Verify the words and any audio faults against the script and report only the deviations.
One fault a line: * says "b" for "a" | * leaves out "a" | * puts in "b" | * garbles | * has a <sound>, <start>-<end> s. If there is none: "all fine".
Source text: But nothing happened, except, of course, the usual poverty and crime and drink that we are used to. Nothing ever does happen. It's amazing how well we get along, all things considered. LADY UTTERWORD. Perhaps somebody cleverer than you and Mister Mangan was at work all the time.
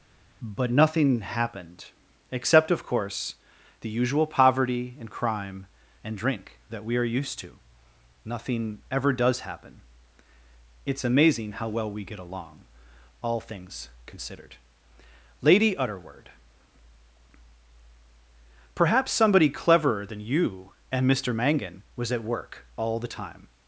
all fine